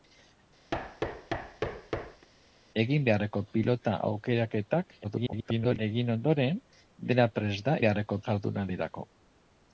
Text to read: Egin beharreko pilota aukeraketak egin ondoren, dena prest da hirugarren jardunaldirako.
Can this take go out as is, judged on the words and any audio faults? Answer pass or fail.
fail